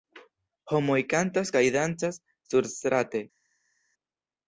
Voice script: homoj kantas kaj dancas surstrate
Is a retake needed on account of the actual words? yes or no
no